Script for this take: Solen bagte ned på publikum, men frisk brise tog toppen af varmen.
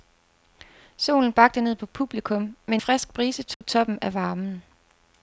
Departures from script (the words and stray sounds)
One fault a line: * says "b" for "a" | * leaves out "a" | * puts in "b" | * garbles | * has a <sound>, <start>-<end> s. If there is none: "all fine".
* has a dropout, 3.5-3.6 s